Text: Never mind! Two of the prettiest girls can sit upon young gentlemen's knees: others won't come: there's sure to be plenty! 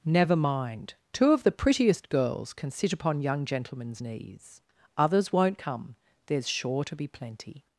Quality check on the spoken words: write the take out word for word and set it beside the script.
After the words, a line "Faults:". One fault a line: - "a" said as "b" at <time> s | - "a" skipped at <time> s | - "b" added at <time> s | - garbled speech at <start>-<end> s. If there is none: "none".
Never mind! Two of the prettiest girls can sit upon young gentlemen's knees: others won't come: there's sure to be plenty!
Faults:
none